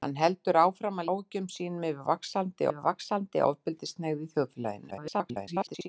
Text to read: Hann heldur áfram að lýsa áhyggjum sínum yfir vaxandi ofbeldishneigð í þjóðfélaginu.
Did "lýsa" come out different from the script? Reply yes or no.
yes